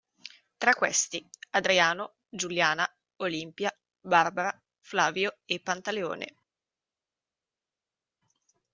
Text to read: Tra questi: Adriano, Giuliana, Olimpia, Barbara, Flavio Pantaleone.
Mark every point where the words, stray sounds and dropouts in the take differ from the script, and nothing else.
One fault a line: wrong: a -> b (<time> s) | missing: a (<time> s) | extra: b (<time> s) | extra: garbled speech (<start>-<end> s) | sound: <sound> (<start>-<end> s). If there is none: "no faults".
extra: e (5.4 s)